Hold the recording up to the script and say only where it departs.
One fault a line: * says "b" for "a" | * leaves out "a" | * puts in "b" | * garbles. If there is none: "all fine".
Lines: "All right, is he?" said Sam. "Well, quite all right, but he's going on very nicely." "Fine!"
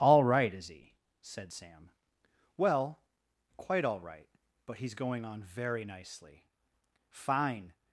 all fine